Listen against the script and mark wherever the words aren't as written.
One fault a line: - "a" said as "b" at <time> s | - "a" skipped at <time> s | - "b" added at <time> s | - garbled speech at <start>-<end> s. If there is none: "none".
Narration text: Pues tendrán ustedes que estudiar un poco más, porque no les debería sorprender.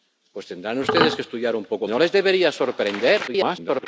- "más porque" skipped at 1.9 s
- garbled speech at 3.3-3.9 s